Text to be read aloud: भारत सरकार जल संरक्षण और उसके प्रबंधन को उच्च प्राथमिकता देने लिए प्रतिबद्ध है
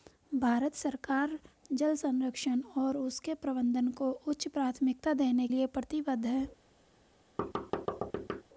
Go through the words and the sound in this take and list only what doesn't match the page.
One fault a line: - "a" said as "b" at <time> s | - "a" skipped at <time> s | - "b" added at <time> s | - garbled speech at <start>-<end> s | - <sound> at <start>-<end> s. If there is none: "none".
- thud at 7.4-8.4 s